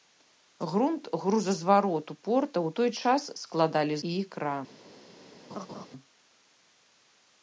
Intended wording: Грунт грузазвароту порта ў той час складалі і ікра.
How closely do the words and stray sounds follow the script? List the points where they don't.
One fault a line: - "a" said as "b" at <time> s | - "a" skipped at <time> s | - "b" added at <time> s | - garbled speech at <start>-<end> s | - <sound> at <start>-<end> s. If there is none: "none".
- laugh at 5.5-5.9 s